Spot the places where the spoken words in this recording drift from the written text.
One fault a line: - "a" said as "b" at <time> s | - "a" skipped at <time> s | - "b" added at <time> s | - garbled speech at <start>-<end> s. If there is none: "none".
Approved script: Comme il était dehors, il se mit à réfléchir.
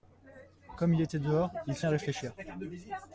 - "mit" skipped at 1.9 s